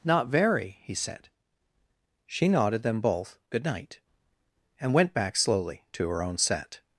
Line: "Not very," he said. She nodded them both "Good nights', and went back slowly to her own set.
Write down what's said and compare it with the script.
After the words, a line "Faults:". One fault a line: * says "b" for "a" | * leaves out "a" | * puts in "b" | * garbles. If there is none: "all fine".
"Not very," he said. She nodded them both "Good night', and went back slowly to her own set.
Faults:
* says "night" for "nights"